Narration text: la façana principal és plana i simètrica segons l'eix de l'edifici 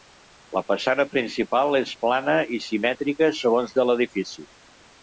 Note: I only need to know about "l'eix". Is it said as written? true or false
false